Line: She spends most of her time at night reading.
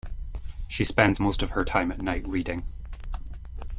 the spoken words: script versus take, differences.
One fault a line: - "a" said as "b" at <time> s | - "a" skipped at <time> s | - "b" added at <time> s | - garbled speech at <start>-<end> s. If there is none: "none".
none